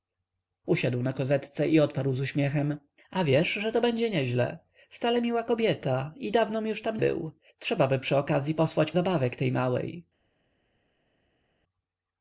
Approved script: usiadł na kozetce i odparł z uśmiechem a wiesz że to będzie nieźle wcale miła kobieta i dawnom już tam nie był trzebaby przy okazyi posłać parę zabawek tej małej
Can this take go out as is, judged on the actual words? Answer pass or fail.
fail